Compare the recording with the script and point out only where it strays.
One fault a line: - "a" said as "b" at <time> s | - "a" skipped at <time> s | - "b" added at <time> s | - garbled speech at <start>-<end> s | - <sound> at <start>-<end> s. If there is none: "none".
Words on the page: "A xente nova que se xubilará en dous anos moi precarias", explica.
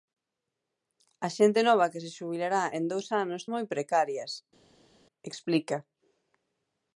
none